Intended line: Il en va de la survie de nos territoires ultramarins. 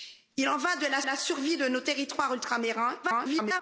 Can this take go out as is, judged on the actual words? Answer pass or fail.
fail